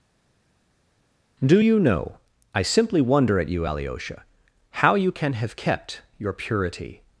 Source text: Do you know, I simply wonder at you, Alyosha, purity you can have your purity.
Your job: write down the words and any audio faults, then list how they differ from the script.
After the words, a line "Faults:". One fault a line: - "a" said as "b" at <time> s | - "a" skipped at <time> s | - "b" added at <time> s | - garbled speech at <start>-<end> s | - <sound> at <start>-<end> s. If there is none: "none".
Do you know, I simply wonder at you, Alyosha, how you can have kept your purity.
Faults:
- "purity" said as "how" at 4.7 s
- "kept" added at 5.6 s